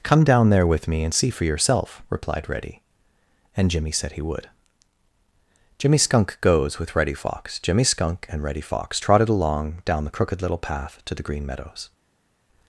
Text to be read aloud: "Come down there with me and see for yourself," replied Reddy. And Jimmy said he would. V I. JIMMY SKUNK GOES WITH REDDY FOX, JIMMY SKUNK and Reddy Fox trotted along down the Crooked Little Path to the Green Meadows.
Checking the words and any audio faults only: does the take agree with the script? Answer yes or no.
no